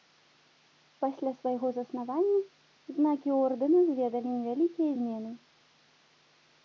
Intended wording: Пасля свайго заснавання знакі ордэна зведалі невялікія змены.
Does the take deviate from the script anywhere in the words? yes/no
no